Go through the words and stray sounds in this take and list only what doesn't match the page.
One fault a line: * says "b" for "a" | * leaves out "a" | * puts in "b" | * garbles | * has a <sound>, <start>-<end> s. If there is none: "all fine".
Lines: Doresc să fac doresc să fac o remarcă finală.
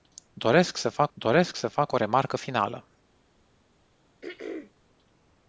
* has a throat clearing, 4.2-4.7 s